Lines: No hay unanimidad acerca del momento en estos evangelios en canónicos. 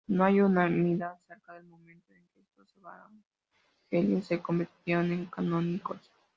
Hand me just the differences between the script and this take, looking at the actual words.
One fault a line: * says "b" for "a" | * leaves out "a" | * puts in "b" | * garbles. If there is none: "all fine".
* puts in "que"
* puts in "se convirtieron"